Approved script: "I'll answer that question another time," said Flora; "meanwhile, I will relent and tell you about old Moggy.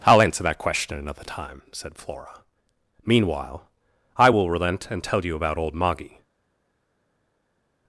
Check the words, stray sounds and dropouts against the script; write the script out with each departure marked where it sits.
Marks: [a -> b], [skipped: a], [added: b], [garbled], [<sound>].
"I'll answer that question another time," said Flora; "meanwhile, I will relent and tell you about old Moggy.